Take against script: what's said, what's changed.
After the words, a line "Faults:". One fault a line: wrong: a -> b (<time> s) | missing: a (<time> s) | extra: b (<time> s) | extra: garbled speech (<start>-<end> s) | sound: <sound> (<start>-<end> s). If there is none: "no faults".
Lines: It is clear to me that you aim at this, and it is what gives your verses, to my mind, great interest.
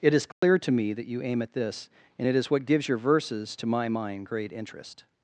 It is clear to me that you aim at this, and it is what gives your verses, to my mind, great interest.
Faults:
sound: dropout (0.3-0.4 s)